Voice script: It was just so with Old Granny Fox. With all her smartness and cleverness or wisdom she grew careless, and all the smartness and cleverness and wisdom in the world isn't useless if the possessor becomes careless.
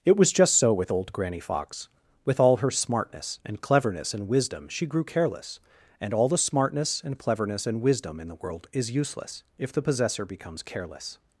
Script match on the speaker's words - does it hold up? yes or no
no